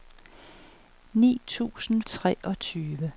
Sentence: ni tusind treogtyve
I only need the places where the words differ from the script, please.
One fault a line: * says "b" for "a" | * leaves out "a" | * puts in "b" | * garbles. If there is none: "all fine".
all fine